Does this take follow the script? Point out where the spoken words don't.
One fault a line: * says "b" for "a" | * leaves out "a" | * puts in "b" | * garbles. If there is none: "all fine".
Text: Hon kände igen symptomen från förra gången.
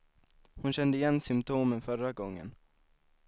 * leaves out "från"